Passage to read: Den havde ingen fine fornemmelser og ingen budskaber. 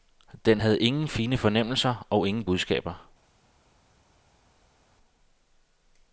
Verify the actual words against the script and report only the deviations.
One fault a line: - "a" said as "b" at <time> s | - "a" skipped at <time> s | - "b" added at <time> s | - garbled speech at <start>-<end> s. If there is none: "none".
none